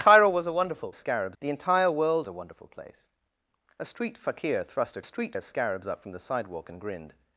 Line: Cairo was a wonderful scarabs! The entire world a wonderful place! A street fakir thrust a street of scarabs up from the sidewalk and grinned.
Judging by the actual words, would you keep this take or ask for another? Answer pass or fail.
pass